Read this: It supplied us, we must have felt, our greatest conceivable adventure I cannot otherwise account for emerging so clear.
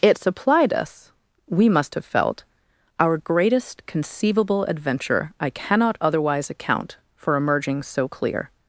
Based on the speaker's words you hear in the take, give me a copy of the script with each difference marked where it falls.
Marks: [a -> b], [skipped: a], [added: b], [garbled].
It supplied us, we must have felt, our greatest conceivable adventure I cannot otherwise account for emerging so clear.